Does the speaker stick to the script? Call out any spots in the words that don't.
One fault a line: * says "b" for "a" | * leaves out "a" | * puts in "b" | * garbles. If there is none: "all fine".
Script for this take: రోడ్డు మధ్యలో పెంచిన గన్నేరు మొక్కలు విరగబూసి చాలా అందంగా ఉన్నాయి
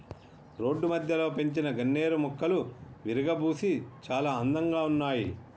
all fine